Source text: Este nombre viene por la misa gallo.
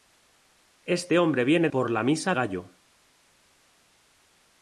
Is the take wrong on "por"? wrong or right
right